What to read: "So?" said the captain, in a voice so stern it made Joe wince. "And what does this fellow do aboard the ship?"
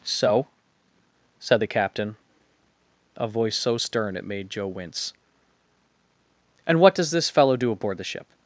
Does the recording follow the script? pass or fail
fail